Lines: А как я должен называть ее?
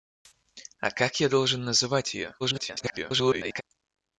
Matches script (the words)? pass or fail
fail